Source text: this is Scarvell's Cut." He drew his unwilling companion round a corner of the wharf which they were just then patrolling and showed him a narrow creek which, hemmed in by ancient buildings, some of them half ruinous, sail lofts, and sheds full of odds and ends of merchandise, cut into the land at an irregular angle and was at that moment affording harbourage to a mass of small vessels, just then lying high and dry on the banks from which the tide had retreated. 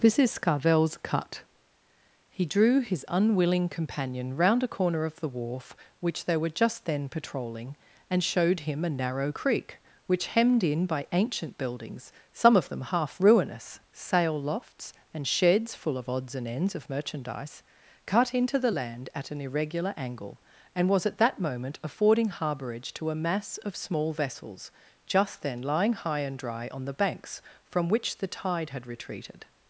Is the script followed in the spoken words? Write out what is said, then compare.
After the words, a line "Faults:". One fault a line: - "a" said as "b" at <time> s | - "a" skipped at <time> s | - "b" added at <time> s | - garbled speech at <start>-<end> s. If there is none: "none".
this is Scarvell's Cut." He drew his unwilling companion round a corner of the wharf which they were just then patrolling and showed him a narrow creek which, hemmed in by ancient buildings, some of them half ruinous, sail lofts, and sheds full of odds and ends of merchandise, cut into the land at an irregular angle and was at that moment affording harbourage to a mass of small vessels, just then lying high and dry on the banks from which the tide had retreated.
Faults:
none